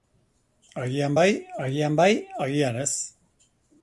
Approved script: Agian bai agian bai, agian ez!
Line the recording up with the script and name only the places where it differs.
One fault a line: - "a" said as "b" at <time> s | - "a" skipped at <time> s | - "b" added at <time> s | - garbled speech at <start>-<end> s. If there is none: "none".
none